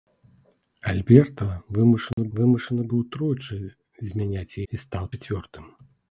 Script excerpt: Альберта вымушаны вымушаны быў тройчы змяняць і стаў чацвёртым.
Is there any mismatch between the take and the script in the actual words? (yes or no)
no